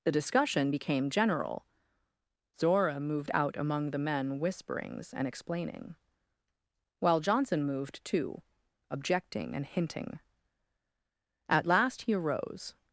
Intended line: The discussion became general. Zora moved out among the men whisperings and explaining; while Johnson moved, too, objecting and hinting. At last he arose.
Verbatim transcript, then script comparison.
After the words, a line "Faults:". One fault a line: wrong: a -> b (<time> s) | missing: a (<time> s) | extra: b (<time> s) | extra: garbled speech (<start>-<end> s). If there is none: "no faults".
The discussion became general. Zora moved out among the men whisperings and explaining; while Johnson moved, too, objecting and hinting. At last he arose.
Faults:
no faults